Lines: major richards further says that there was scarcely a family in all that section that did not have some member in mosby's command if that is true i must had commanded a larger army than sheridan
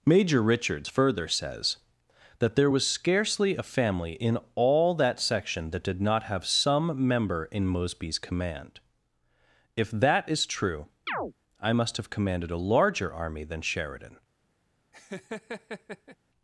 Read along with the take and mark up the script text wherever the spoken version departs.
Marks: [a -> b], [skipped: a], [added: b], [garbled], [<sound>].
major richards further says that there was scarcely a family in all that section that did not have some member in mosby's command if that is true [chirp] i must [had -> have] commanded a larger army than sheridan [laugh]